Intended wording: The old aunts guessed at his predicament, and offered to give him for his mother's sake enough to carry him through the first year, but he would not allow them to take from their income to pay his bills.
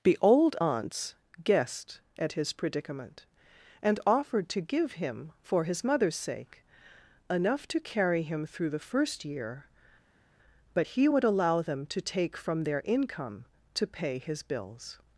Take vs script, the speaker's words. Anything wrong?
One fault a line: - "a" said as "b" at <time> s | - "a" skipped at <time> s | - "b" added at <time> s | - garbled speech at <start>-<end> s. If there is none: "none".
- "not" skipped at 11.2 s